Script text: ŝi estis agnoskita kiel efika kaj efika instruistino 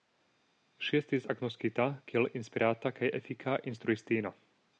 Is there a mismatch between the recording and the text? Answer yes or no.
yes